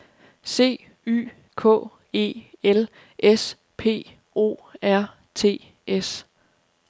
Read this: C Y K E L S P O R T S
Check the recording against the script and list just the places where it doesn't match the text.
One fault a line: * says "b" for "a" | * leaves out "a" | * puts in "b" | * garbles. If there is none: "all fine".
all fine